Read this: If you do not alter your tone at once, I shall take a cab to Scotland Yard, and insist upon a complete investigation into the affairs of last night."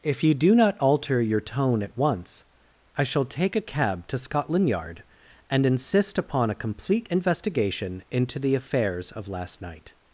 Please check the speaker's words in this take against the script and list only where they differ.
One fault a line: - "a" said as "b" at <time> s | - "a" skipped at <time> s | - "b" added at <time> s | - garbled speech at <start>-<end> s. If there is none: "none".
none